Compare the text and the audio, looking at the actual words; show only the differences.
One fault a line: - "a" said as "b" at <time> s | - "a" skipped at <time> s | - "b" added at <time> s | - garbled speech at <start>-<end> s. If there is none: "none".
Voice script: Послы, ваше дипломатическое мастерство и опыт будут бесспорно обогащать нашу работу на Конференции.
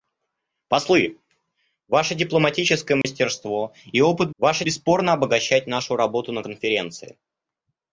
- "будут" said as "ваше" at 4.4 s